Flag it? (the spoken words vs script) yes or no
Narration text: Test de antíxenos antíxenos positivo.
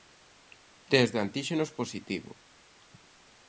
yes